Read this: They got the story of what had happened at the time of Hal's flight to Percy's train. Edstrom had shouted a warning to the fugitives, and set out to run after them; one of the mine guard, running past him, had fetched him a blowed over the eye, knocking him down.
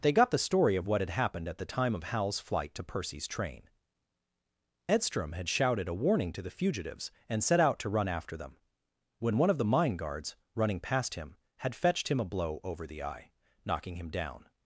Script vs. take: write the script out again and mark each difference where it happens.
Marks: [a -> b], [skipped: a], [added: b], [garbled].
They got the story of what had happened at the time of Hal's flight to Percy's train. Edstrom had shouted a warning to the fugitives, and set out to run after them; [added: when] one of the mine [guard, -> guards] running past him, had fetched him a [blowed -> blow] over the eye, knocking him down.